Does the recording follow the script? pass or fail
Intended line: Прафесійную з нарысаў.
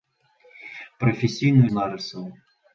pass